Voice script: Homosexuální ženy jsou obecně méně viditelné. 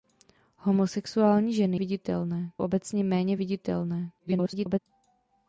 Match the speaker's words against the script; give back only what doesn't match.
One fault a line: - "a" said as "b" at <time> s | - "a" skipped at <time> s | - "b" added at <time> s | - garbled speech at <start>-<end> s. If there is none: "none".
- "jsou" said as "viditelné" at 1.8 s
- garbled speech at 4.2-4.8 s